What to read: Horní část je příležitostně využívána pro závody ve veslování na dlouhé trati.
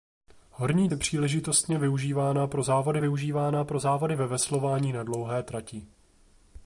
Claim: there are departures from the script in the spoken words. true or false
true